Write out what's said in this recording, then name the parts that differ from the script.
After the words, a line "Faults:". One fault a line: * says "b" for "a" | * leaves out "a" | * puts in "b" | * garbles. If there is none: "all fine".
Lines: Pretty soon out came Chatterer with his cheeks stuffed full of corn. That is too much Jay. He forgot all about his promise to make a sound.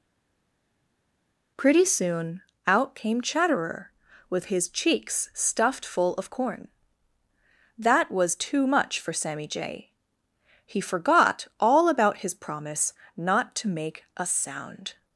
Pretty soon out came Chatterer with his cheeks stuffed full of corn. That was too much for Sammy Jay. He forgot all about his promise not to make a sound.
Faults:
* says "was" for "is"
* puts in "for Sammy"
* puts in "not"